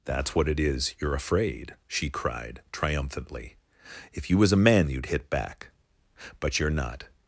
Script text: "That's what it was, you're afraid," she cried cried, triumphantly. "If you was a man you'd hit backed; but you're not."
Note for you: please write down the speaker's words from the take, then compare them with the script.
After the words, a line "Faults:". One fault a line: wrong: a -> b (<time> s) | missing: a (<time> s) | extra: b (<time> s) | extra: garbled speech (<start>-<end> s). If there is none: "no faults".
"That's what it is, you're afraid," she cried, triumphantly. "If you was a man you'd hit back; but you're not."
Faults:
wrong: was -> is (0.6 s)
missing: cried (2.6 s)
wrong: backed -> back (5.3 s)